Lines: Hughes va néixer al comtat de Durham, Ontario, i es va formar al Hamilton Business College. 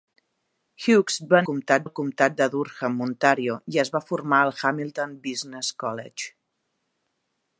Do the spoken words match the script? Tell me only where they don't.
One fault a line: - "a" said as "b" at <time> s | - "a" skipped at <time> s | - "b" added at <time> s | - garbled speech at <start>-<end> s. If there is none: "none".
- "néixer" said as "comtat" at 1.5 s